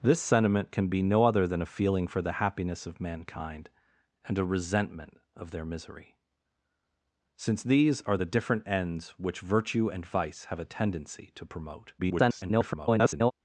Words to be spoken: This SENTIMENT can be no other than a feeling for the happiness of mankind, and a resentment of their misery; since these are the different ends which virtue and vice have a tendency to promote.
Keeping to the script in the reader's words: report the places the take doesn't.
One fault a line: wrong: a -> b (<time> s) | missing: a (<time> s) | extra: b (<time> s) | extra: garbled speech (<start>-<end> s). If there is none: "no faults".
extra: garbled speech (12.0-13.3 s)